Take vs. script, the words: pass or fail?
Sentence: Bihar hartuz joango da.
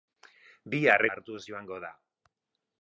pass